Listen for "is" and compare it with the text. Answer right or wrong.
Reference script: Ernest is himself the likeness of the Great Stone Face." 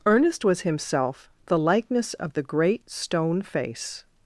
wrong